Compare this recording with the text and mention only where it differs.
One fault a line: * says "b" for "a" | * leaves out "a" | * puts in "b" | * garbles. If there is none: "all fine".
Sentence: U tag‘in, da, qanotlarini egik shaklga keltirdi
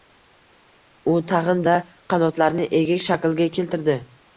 all fine